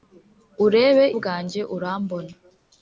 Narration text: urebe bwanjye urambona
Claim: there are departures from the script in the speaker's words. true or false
false